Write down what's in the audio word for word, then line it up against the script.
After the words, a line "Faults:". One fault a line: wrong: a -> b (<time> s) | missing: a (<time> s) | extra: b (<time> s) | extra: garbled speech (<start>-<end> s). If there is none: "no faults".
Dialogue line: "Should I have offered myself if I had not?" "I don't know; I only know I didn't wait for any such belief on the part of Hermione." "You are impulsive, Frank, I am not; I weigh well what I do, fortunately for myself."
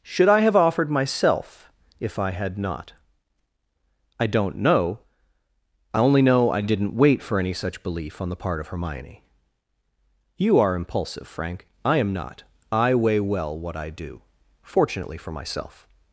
"Should I have offered myself if I had not?" "I don't know; I only know I didn't wait for any such belief on the part of Hermione." "You are impulsive, Frank, I am not; I weigh well what I do, fortunately for myself."
Faults:
no faults